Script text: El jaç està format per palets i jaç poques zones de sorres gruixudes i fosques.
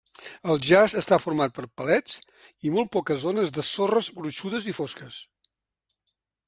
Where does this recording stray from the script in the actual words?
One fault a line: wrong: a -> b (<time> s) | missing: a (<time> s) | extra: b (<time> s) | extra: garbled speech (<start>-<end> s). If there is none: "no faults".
wrong: jaç -> molt (2.8 s)